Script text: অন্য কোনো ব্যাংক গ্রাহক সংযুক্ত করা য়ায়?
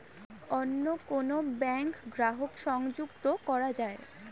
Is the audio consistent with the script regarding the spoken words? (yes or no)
yes